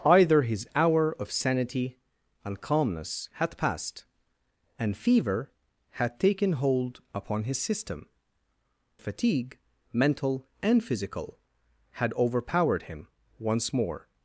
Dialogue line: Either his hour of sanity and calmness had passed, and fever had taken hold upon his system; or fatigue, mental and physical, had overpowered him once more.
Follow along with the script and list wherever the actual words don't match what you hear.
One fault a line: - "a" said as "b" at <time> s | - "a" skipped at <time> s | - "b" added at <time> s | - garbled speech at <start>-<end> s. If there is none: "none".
- "or" skipped at 8.1 s